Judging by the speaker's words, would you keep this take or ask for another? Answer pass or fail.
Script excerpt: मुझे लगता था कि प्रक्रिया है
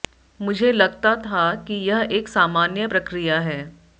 fail